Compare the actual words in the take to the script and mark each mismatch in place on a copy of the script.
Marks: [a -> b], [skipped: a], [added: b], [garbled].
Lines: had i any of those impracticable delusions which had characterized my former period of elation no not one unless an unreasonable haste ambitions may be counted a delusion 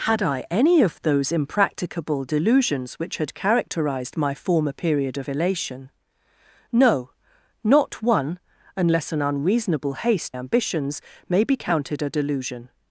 had i any of those impracticable delusions which had characterized my former period of elation no not one unless an unreasonable haste ambitions may be counted a delusion